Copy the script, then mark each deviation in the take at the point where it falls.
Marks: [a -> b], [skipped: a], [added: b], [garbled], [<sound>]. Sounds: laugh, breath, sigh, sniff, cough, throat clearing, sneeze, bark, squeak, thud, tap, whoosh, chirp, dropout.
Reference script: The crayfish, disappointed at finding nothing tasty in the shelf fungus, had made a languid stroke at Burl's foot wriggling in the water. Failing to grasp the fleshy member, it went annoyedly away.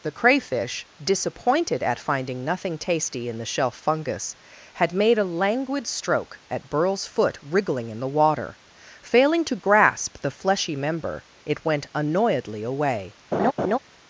The crayfish, disappointed at finding nothing tasty in the shelf fungus, had made a languid stroke at Burl's foot wriggling in the water. Failing to grasp the fleshy member, it went annoyedly away. [laugh]